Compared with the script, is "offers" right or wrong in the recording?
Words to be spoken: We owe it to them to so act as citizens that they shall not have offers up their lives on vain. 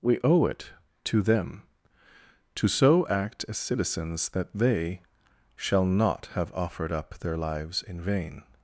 wrong